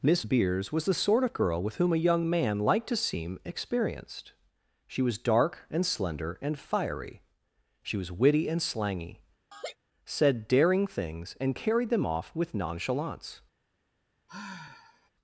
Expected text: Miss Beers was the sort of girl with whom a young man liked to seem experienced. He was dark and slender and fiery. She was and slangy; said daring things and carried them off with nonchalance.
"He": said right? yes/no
no